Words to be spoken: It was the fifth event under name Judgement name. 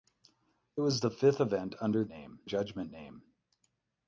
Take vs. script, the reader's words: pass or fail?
pass